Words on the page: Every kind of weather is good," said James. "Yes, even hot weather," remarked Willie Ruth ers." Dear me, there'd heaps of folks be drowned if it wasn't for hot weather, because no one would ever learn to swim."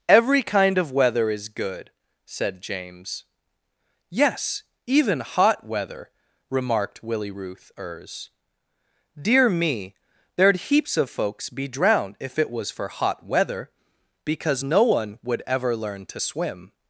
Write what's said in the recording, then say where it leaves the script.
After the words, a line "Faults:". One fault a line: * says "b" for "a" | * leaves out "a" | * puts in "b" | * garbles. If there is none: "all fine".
Every kind of weather is good," said James. "Yes, even hot weather," remarked Willie Ruth ers." Dear me, there'd heaps of folks be drowned if it was for hot weather, because no one would ever learn to swim."
Faults:
* says "was" for "wasn't"